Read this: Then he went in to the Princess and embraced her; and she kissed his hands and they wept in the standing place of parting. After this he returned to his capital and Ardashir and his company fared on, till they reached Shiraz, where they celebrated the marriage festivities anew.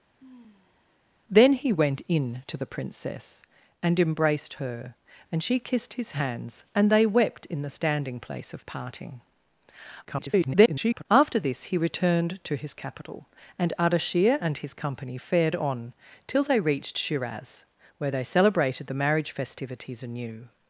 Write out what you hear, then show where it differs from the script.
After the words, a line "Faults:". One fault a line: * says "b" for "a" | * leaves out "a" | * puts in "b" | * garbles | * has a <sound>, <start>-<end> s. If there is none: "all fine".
Then he went in to the Princess and embraced her; and she kissed his hands and they wept in the standing place of parting. [garbled] After this he returned to his capital and Ardashir and his company fared on, till they reached Shiraz, where they celebrated the marriage festivities anew.
Faults:
* has a sigh, 0.2-1.0 s
* garbles